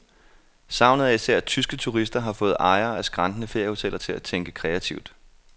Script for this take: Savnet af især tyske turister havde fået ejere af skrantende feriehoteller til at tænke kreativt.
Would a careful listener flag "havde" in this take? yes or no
yes